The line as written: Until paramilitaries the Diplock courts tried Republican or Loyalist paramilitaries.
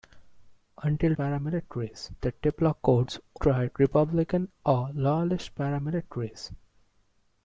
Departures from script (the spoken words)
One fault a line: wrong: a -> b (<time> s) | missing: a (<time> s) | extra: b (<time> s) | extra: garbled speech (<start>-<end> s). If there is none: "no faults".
no faults